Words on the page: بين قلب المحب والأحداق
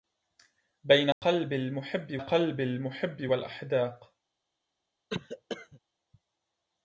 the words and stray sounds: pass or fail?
fail